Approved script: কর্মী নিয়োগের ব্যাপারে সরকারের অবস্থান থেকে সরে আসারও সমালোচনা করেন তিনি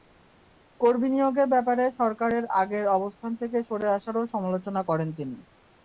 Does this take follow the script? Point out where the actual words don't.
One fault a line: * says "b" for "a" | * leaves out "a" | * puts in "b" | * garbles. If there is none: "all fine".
* puts in "আগের"